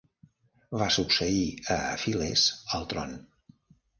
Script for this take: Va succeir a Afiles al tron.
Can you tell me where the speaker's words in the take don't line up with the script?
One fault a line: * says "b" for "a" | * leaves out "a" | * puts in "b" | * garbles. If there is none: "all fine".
all fine